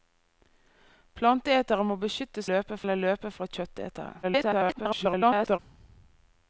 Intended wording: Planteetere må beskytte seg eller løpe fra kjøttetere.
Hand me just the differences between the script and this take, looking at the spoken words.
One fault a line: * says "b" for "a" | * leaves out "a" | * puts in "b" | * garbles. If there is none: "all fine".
* says "løpe" for "seg"
* garbles